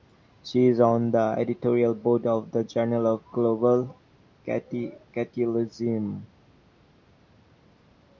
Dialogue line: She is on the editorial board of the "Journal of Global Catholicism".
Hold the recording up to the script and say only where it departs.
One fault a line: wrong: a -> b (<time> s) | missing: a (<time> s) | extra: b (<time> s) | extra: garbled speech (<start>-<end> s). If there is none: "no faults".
no faults